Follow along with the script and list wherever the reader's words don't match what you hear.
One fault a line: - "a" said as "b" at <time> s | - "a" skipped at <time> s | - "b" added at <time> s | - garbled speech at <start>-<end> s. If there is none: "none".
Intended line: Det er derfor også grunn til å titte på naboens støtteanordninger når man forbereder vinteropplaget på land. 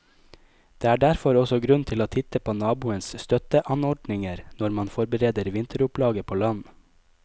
none